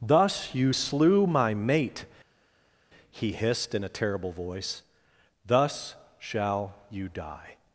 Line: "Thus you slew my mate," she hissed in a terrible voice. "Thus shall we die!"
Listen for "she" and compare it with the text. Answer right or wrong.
wrong